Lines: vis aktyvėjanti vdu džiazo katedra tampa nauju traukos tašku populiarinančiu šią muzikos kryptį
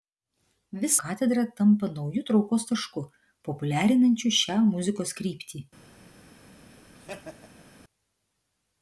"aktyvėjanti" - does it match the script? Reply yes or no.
no